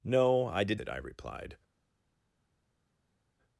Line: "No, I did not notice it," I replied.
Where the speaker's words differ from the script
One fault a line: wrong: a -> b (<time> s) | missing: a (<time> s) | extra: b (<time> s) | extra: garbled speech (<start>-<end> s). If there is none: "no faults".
missing: not notice (0.8 s)